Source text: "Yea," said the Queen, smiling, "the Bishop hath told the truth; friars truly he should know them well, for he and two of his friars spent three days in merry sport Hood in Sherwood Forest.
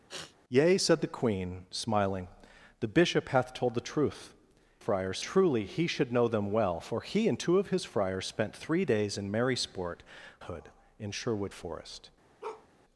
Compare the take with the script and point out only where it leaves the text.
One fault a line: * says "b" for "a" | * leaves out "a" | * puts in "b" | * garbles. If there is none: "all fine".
all fine